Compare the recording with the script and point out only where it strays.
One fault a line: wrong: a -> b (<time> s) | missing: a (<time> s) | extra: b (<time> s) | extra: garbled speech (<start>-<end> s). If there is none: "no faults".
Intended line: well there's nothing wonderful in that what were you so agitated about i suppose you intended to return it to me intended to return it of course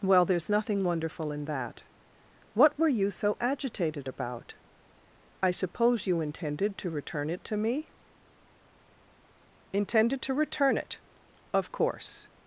no faults